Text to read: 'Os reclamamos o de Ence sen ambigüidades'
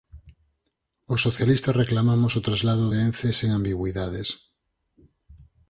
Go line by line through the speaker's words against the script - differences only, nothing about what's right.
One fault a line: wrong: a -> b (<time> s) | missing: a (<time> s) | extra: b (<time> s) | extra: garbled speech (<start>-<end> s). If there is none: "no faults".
extra: socialistas (1.3 s)
extra: traslado (2.5 s)